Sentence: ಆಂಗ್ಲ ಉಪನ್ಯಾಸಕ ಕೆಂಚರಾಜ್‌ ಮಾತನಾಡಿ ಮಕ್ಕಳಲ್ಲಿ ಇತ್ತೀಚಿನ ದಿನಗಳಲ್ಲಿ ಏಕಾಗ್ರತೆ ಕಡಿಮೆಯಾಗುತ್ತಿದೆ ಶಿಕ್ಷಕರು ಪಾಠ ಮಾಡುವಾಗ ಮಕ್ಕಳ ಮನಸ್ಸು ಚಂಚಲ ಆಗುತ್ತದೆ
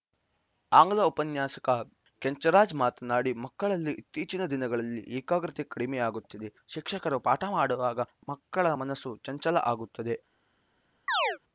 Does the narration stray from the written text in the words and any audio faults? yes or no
yes